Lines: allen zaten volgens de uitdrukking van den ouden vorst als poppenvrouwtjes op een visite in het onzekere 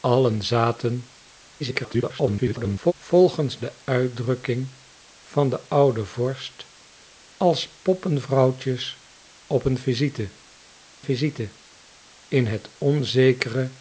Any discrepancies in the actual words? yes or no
yes